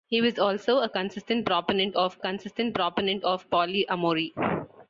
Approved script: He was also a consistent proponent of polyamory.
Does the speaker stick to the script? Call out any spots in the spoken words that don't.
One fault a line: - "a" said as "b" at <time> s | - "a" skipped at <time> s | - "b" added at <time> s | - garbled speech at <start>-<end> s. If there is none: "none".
- "consistent proponent of" added at 2.2 s